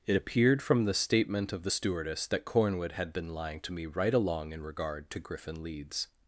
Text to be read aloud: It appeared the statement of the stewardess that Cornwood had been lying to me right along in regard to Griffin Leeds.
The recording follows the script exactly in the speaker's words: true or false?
false